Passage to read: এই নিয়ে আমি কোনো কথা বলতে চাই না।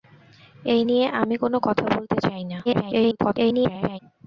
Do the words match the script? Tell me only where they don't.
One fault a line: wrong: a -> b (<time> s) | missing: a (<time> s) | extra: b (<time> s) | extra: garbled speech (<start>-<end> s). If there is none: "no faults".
extra: garbled speech (2.6-4.0 s)